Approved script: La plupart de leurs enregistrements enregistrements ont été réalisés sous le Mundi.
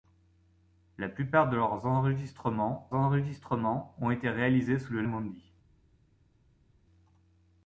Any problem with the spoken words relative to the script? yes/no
no